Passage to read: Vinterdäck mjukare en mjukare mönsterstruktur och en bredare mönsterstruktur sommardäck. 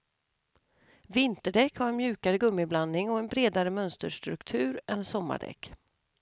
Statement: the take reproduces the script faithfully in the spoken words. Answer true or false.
false